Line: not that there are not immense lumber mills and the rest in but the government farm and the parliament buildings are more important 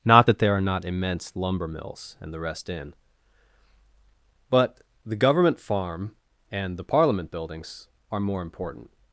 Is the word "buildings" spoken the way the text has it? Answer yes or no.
yes